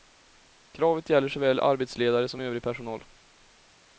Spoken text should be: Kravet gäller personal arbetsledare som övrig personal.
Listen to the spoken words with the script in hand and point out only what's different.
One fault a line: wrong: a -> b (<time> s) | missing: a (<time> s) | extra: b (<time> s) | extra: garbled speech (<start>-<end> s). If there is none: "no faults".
wrong: personal -> såväl (1.3 s)